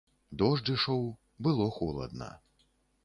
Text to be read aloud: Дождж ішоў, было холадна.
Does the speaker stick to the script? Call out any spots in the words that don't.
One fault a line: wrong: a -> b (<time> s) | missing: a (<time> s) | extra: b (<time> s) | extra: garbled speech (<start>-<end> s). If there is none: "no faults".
no faults